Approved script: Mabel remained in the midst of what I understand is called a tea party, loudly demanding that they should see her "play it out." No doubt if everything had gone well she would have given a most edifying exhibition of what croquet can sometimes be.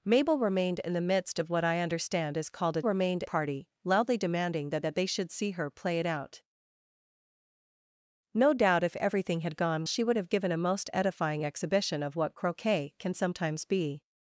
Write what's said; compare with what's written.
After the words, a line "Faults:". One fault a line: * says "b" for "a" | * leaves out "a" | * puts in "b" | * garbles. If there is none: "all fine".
Mabel remained in the midst of what I understand is called a remained party, loudly demanding that that they should see her "play it out." No doubt if everything had gone she would have given a most edifying exhibition of what croquet can sometimes be.
Faults:
* says "remained" for "tea"
* puts in "that"
* leaves out "well"